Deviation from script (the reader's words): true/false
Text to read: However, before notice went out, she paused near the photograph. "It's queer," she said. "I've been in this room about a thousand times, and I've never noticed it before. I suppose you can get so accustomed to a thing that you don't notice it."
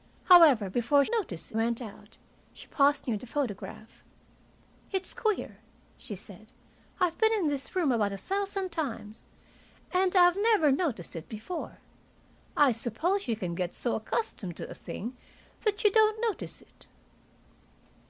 false